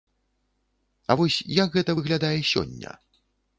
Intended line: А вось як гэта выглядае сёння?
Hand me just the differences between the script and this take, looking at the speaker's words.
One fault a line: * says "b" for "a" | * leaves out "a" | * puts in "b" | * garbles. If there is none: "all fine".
all fine